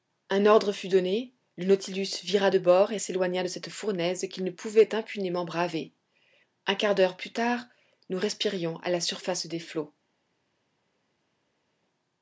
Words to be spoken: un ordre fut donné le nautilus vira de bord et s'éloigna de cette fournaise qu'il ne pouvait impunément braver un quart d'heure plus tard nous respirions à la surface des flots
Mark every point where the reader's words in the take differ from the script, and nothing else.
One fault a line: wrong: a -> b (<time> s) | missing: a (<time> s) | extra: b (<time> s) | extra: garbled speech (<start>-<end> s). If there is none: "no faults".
no faults